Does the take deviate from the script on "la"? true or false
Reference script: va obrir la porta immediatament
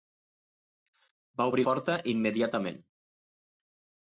true